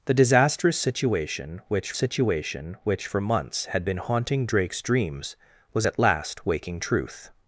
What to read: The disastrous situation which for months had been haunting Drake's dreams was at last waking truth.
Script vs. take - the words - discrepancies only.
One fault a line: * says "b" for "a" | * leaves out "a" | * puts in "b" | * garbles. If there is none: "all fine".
* puts in "situation which"